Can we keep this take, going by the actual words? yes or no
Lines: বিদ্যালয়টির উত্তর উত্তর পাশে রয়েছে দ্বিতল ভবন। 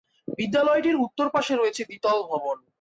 no